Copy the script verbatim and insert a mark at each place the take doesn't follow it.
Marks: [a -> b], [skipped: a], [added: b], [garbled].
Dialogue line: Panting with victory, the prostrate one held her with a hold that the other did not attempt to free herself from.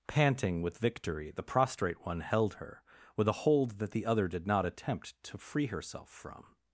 Panting with victory, the prostrate one held her with a hold that the other did not attempt to free herself from.